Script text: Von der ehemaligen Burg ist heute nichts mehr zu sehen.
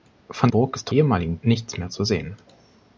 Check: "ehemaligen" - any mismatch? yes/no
yes